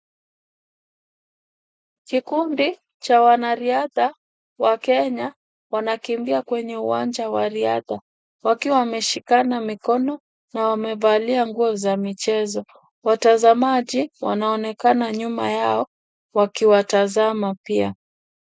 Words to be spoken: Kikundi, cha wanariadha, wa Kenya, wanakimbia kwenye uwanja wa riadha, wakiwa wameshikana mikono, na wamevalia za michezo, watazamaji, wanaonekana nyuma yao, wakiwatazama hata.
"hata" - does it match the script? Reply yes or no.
no